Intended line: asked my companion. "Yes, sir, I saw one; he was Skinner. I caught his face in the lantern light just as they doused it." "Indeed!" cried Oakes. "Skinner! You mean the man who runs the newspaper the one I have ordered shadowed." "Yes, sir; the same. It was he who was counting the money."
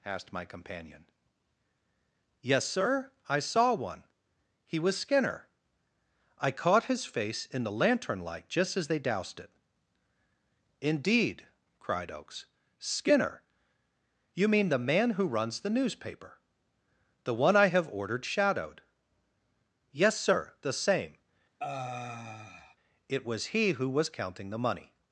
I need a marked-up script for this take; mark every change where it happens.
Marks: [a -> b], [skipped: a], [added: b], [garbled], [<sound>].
asked my companion. "Yes, sir, I saw one; he was Skinner. I caught his face in the lantern light just as they doused it." "Indeed!" cried Oakes. "Skinner! You mean the man who runs the newspaper the one I have ordered shadowed." "Yes, sir; the same. [sigh] It was he who was counting the money."